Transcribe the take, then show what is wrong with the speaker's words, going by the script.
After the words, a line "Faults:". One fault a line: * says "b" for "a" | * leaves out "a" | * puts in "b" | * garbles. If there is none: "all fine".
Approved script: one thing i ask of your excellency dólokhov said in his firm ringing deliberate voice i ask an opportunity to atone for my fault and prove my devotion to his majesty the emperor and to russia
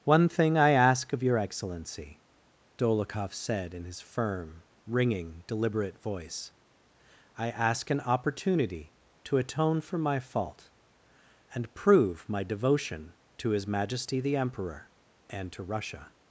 one thing i ask of your excellency dólokhov said in his firm ringing deliberate voice i ask an opportunity to atone for my fault and prove my devotion to his majesty the emperor and to russia
Faults:
all fine